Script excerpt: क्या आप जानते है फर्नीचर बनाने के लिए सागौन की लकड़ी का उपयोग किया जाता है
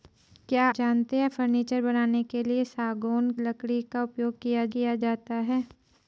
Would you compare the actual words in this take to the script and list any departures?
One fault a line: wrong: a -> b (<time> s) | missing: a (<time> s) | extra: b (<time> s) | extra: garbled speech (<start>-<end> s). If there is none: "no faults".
missing: आप (0.6 s)
missing: की (3.3 s)
extra: किया (4.7 s)